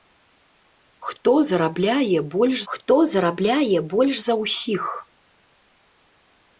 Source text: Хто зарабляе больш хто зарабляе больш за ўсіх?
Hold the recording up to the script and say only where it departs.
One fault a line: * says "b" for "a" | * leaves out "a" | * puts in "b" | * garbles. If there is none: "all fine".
all fine